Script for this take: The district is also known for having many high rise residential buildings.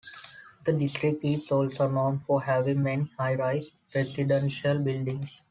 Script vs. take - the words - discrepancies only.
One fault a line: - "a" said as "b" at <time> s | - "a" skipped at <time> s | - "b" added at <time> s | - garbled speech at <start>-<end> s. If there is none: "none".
none